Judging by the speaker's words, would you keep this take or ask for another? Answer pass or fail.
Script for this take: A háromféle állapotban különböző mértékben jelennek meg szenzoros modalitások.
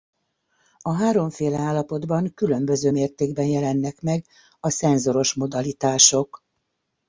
fail